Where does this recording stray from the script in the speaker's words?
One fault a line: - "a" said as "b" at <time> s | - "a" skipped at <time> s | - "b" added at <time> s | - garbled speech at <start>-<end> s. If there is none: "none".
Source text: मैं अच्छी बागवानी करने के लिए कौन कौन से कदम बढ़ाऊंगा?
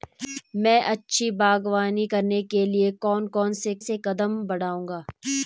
- "से" added at 3.8 s